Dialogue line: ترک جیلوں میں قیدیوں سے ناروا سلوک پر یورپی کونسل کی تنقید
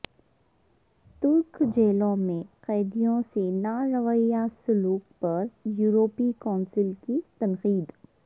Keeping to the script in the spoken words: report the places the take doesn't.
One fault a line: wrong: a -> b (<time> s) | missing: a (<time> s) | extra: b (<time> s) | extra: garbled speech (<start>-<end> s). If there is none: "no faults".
no faults